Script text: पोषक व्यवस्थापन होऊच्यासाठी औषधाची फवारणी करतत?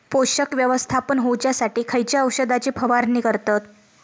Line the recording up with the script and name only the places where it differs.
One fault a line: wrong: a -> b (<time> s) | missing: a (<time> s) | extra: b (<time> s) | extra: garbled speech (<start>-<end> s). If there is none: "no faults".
extra: खयच्या (1.9 s)